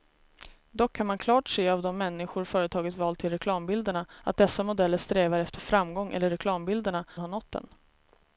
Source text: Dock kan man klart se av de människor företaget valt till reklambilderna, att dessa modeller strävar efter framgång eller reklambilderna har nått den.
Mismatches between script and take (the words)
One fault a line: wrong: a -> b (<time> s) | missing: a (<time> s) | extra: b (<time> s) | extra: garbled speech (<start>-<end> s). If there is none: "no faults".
no faults